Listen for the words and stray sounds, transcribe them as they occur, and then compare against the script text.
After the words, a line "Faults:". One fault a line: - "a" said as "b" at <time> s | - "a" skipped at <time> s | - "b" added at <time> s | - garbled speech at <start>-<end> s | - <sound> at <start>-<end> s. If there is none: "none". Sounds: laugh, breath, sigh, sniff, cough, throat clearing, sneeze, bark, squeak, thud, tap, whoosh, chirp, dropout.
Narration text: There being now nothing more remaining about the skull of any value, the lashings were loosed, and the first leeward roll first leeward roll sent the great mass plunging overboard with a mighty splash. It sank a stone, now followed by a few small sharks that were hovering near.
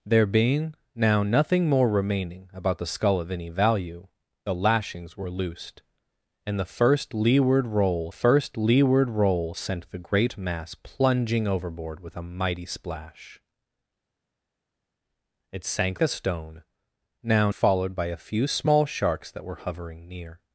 There being now nothing more remaining about the skull of any value, the lashings were loosed, and the first leeward roll first leeward roll sent the great mass plunging overboard with a mighty splash. It sank a stone, now followed by a few small sharks that were hovering near.
Faults:
none